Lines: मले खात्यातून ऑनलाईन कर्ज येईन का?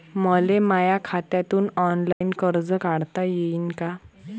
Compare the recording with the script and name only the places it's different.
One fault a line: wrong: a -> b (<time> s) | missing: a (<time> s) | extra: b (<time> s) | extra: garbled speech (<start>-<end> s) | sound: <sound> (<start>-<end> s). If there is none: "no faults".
extra: माया (0.6 s)
sound: dropout (2.1-2.2 s)
extra: काढता (2.8 s)